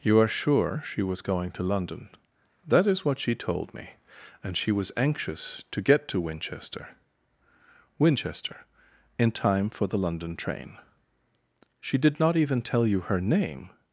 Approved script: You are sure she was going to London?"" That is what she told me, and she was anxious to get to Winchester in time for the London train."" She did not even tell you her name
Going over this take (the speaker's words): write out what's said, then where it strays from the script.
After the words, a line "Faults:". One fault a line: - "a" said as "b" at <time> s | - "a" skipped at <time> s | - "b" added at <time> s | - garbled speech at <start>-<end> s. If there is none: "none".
You are sure she was going to London?"" That is what she told me, and she was anxious to get to Winchester Winchester in time for the London train."" She did not even tell you her name
Faults:
- "Winchester" added at 8.0 s